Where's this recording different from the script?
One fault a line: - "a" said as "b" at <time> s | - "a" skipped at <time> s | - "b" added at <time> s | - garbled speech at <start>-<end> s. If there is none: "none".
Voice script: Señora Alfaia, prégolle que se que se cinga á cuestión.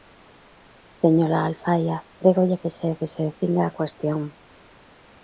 none